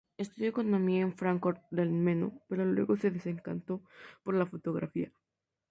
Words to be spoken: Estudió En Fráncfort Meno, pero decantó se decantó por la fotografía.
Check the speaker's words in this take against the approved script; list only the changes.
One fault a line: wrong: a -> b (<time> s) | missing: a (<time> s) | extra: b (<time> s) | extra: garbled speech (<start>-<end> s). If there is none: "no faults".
extra: Economía (0.5 s)
extra: del (1.7 s)
wrong: decantó -> luego (2.6 s)